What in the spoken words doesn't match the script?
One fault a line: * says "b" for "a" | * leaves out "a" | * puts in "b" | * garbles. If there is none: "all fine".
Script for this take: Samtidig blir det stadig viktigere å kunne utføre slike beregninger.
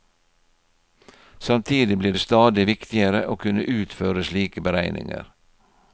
all fine